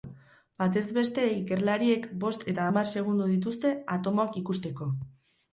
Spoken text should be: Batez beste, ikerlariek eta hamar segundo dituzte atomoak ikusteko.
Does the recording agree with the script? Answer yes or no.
no